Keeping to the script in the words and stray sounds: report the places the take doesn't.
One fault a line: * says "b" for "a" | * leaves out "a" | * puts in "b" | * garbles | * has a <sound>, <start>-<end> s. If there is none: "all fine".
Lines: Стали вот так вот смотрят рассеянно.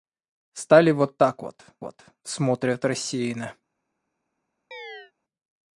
* puts in "вот"
* has a chirp, 4.7-5.1 s